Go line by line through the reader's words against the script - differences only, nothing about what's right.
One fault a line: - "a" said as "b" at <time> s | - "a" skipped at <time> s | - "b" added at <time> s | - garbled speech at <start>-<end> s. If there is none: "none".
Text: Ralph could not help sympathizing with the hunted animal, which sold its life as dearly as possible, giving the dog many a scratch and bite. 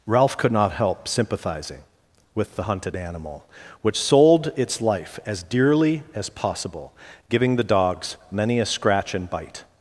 - "dog" said as "dogs" at 7.6 s